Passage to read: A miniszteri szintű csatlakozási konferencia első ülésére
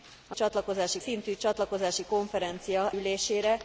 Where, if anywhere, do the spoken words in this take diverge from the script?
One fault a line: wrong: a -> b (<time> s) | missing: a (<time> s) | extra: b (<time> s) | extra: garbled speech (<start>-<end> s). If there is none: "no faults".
wrong: miniszteri -> csatlakozási (0.3 s)
missing: első (2.9 s)